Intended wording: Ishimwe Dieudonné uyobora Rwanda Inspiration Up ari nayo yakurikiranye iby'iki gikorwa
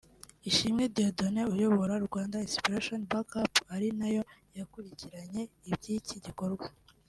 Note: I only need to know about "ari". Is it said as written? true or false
true